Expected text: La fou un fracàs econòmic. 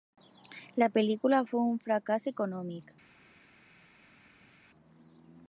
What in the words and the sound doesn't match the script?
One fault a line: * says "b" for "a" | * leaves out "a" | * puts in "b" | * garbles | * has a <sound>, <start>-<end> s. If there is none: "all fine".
* puts in "pel·lícula"